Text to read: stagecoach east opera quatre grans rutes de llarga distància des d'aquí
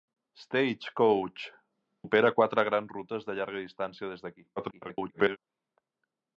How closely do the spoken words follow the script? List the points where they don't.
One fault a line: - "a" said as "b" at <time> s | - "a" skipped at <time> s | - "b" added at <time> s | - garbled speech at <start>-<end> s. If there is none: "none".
- "east" skipped at 1.4 s
- garbled speech at 4.6-5.4 s